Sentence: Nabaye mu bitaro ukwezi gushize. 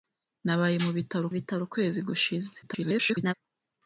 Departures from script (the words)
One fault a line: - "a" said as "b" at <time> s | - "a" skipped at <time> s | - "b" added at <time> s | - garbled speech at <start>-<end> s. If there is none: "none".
- "bitaro" added at 1.4 s
- garbled speech at 2.6-3.3 s